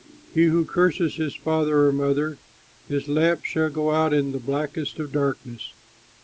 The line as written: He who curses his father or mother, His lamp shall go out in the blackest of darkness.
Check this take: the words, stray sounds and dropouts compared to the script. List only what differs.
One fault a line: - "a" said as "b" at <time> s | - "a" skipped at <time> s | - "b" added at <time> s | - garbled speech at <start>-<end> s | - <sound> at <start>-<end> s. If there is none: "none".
none